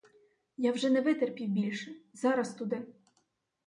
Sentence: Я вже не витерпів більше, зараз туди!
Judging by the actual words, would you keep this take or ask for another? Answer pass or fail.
pass